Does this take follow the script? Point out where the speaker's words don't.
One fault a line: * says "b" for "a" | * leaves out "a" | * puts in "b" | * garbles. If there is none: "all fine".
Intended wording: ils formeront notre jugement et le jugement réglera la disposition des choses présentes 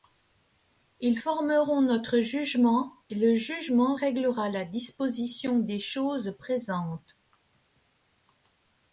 all fine